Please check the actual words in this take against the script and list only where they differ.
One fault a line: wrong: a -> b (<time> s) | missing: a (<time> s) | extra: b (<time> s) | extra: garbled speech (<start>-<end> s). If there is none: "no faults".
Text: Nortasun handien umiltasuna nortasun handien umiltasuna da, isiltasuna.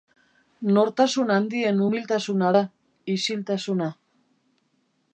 missing: nortasun handien umiltasuna (2.6 s)